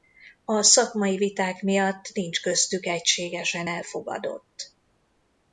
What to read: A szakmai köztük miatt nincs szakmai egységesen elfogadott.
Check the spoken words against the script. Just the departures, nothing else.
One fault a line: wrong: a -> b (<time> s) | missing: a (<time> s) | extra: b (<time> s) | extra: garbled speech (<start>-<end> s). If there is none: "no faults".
wrong: köztük -> viták (1.2 s)
wrong: szakmai -> köztük (2.4 s)